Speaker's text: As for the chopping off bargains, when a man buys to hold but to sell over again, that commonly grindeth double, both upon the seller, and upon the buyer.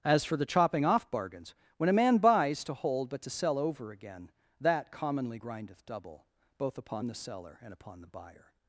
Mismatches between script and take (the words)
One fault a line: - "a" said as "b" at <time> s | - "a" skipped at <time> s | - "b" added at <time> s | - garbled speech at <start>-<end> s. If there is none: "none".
none